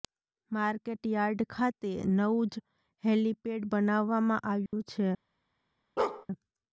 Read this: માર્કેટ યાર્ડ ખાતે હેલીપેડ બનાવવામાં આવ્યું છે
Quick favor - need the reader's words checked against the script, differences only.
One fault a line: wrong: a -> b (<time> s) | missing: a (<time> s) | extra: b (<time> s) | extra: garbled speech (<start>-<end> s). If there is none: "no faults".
extra: નવું જ (2.1 s)